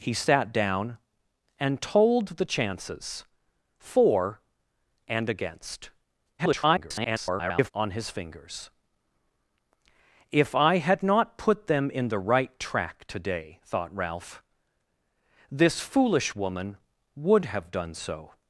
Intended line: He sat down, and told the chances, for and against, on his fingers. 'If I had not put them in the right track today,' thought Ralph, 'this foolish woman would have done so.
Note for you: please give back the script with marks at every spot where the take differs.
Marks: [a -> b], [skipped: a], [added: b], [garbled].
He sat down, and told the chances, for and against, [garbled] on his fingers. 'If I had not put them in the right track today,' thought Ralph, 'this foolish woman would have done so.